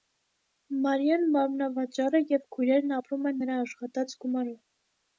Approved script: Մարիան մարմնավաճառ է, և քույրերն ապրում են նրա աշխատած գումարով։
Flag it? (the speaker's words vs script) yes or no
no